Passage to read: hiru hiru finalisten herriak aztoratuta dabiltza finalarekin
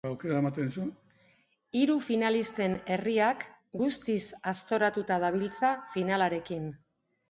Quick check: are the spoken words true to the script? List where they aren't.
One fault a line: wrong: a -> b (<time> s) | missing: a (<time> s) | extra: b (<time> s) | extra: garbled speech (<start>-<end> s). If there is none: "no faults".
missing: hiru (2.0 s)
extra: guztiz (3.8 s)